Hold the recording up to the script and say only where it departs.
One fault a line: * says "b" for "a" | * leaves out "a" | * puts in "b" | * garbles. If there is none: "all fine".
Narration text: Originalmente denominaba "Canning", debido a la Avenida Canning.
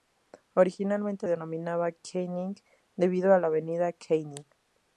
all fine